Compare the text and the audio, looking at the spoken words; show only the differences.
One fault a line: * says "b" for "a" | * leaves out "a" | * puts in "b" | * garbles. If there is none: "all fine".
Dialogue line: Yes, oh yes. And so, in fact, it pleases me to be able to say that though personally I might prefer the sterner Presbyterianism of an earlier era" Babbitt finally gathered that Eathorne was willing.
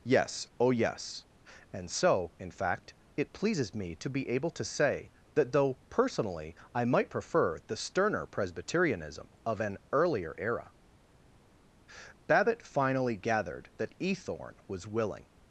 all fine